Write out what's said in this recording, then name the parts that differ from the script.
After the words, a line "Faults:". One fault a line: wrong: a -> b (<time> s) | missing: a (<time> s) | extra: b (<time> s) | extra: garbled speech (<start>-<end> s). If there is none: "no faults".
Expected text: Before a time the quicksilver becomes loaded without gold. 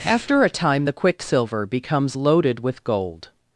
After a time the quicksilver becomes loaded with gold.
Faults:
wrong: Before -> After (0.0 s)
wrong: without -> with (2.6 s)